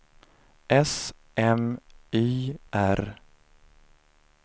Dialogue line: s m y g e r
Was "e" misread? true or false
true